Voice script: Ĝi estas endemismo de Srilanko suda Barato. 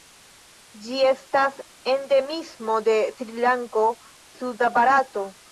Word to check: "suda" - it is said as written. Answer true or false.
true